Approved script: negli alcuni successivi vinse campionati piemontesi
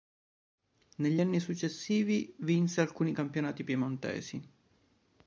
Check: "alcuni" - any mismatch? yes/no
yes